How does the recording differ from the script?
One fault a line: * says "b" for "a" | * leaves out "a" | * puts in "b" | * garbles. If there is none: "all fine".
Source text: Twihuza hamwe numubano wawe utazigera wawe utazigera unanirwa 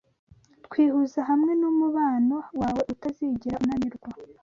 * leaves out "wawe utazigera"